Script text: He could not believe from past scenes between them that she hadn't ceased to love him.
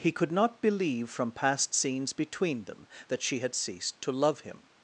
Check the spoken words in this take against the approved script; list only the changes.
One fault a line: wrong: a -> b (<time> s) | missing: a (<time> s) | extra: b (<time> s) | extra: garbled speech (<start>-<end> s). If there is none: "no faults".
wrong: hadn't -> had (3.4 s)